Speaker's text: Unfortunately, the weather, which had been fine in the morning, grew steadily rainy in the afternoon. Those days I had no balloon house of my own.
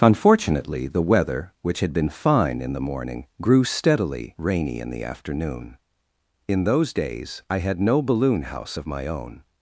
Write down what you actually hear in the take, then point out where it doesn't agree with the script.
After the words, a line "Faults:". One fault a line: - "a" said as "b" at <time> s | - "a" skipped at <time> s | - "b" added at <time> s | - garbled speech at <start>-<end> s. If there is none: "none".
Unfortunately, the weather, which had been fine in the morning, grew steadily rainy in the afternoon. In those days I had no balloon house of my own.
Faults:
- "In" added at 6.5 s